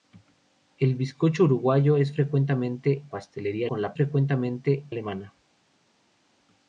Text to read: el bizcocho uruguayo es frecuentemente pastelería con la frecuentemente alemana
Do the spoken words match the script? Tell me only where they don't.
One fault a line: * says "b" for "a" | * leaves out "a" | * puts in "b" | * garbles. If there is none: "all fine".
all fine